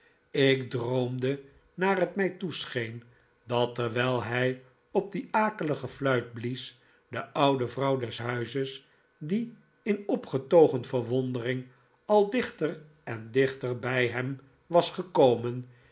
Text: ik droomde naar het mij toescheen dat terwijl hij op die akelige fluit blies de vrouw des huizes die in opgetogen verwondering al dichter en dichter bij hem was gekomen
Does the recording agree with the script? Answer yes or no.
no